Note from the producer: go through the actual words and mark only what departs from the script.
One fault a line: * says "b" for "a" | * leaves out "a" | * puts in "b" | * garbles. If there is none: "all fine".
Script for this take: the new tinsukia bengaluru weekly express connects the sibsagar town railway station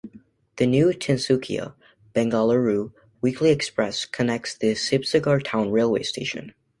all fine